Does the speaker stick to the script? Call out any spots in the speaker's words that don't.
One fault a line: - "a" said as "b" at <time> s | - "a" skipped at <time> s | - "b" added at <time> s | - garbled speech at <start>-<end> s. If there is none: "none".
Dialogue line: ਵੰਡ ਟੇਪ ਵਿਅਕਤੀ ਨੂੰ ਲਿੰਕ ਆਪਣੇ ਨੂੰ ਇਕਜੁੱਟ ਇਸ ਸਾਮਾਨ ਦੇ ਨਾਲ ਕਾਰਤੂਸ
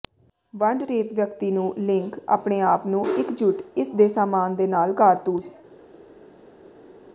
- "ਆਪ" added at 2.6 s
- "ਦੇ" added at 3.9 s